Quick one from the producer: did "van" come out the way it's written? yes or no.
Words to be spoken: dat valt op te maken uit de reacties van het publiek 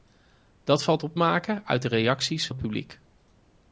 no